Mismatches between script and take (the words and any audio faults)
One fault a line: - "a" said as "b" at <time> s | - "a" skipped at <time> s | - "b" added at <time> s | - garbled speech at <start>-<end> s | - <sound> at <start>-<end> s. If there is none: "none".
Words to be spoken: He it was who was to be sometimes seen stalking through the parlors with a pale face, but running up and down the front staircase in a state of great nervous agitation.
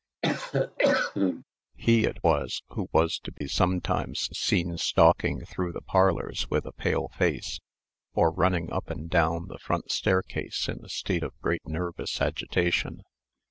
- cough at 0.2-1.4 s
- dropout at 3.4-3.4 s
- "but" said as "or" at 8.1 s